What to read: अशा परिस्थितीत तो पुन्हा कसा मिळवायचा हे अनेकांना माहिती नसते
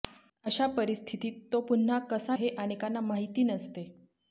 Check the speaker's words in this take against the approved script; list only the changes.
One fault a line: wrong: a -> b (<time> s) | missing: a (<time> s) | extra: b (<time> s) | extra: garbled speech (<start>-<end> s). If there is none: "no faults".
missing: मिळवायचा (2.4 s)